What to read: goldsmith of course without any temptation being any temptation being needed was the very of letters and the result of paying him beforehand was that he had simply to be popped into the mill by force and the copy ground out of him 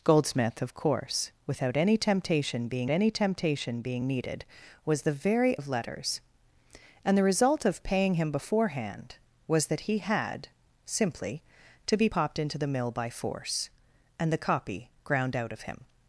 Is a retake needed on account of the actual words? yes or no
no